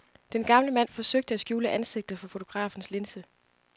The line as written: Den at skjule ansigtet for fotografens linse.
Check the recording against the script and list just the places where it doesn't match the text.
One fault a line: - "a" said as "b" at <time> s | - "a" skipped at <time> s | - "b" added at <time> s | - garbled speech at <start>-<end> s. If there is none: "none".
- "gamle mand forsøgte" added at 0.4 s